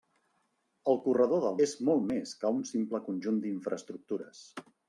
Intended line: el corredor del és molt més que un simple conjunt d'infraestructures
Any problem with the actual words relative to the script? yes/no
no